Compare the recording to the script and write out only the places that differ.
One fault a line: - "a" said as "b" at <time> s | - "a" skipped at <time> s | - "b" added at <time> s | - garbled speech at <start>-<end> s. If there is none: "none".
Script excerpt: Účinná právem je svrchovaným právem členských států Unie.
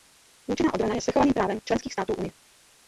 - "právem" said as "obrana" at 0.7 s